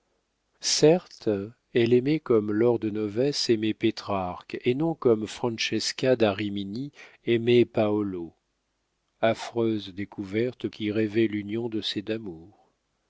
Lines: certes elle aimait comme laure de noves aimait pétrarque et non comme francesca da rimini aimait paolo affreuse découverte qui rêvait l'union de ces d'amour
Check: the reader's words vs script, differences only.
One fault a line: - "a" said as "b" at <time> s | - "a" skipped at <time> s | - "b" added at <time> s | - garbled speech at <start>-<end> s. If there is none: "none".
none